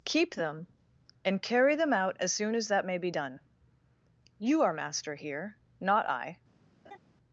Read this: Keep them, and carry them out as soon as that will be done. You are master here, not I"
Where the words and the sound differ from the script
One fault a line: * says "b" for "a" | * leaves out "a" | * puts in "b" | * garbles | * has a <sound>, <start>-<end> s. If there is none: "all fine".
* says "may" for "will"
* has a laugh, 6.9-7.0 s